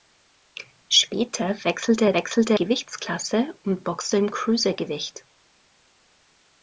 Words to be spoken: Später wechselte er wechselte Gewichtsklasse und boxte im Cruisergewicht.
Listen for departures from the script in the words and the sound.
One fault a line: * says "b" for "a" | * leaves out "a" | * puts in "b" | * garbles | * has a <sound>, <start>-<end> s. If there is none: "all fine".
all fine